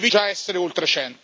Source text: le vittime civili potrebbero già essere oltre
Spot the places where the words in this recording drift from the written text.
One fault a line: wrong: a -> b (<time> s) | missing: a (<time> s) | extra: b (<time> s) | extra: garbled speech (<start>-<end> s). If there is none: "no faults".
missing: vittime civili potrebbero (0.1 s)